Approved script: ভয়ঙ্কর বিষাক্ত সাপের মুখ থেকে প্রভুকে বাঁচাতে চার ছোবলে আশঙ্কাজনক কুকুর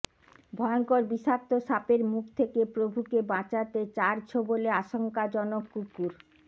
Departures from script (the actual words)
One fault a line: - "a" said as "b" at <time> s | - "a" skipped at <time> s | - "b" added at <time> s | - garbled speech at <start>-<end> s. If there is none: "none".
none